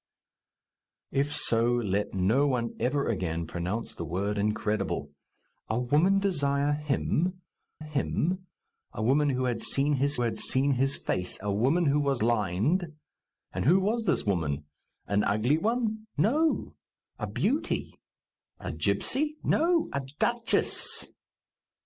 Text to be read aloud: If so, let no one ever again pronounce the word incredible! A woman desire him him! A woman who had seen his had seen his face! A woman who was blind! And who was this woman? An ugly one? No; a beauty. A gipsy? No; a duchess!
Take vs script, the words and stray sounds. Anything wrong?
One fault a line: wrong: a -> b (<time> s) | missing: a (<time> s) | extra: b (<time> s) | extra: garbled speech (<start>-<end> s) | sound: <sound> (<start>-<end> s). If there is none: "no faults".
no faults